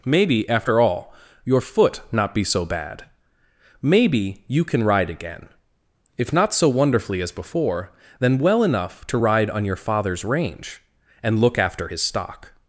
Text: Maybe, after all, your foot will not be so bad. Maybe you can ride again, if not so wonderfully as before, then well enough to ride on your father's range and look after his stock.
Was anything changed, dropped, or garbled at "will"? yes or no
yes